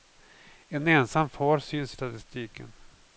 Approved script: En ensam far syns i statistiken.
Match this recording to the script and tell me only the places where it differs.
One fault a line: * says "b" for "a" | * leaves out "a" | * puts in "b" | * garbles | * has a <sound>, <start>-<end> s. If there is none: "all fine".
all fine